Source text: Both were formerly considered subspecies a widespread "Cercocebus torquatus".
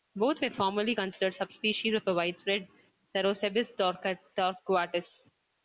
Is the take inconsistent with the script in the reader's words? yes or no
yes